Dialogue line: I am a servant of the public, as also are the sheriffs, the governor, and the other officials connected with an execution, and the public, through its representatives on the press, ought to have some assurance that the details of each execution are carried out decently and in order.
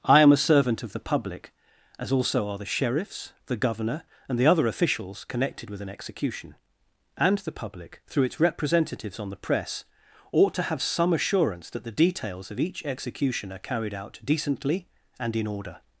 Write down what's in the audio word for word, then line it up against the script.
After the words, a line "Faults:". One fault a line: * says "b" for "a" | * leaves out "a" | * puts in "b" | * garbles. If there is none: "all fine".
I am a servant of the public, as also are the sheriffs, the governor, and the other officials connected with an execution, and the public, through its representatives on the press, ought to have some assurance that the details of each execution are carried out decently and in order.
Faults:
all fine